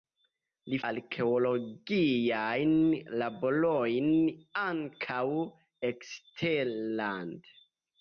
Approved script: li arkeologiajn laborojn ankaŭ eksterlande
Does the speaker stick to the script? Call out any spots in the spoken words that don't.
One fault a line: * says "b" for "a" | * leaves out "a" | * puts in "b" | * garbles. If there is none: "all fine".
all fine